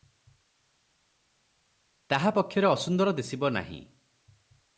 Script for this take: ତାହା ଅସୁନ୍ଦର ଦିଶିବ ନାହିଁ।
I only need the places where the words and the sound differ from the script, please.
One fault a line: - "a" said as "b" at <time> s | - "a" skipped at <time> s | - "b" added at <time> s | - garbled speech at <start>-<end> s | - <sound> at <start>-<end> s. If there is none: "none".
- "ପକ୍ଷରେ" added at 2.3 s